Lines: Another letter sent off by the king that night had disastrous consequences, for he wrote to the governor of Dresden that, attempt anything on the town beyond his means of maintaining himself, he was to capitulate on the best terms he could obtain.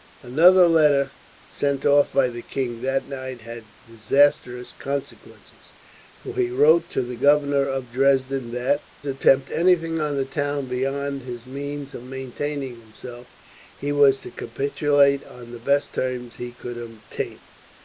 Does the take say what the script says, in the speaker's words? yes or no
yes